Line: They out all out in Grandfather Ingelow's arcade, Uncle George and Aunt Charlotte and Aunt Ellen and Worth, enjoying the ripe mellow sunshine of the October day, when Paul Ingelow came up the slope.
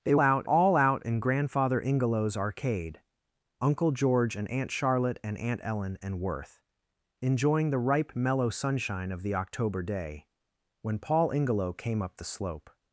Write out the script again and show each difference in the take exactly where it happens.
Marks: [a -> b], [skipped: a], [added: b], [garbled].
They out all out in Grandfather Ingelow's arcade, Uncle George and Aunt Charlotte and Aunt Ellen and Worth, enjoying the ripe mellow sunshine of the October day, when Paul Ingelow came up the slope.